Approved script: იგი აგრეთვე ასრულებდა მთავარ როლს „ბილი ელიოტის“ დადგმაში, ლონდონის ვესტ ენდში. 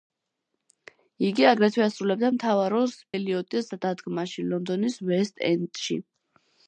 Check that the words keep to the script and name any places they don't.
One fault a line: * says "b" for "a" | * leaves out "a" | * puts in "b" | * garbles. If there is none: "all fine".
* leaves out "ბილი"